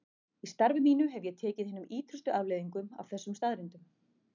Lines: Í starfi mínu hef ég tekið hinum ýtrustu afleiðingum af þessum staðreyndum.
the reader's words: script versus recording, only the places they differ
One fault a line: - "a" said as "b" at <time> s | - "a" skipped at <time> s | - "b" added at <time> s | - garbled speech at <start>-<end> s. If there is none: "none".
none